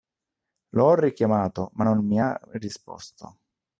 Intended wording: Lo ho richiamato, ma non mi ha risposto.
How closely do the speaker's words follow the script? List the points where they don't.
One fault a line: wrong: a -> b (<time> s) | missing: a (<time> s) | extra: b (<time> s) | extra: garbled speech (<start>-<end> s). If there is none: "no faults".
no faults